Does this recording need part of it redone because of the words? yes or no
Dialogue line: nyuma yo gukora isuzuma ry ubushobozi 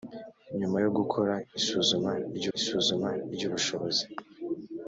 yes